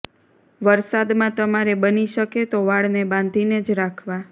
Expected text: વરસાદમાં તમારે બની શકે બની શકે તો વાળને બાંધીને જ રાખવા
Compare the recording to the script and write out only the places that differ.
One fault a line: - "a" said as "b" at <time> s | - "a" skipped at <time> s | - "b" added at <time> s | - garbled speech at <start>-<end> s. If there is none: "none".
- "બની શકે" skipped at 2.5 s